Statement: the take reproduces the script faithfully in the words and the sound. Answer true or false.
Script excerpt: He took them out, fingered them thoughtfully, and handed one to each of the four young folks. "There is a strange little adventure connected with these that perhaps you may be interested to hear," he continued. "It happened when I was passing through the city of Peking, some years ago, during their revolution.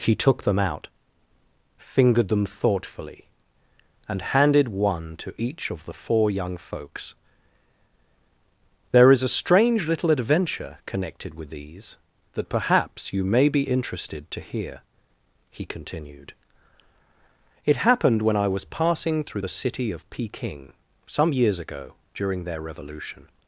true